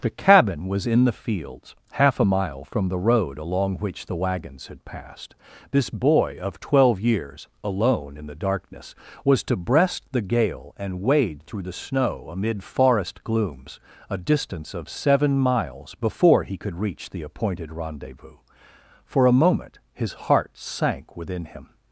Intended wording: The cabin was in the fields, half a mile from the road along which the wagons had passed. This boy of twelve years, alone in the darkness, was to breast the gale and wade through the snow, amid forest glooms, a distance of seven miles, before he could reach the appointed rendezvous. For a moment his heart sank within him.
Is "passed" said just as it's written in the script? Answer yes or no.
yes